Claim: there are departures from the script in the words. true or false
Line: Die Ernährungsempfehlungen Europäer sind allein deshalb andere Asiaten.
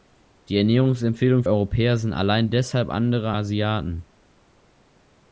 false